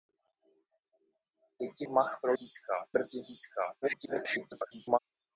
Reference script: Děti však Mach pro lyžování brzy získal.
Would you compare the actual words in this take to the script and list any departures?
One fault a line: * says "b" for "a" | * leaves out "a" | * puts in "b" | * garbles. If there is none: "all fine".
* leaves out "však"
* says "získal" for "lyžování"
* garbles